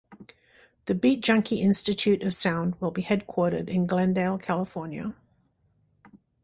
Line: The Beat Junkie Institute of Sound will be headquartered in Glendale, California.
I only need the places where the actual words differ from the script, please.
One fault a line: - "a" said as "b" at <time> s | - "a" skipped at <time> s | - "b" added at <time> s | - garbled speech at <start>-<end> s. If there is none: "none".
none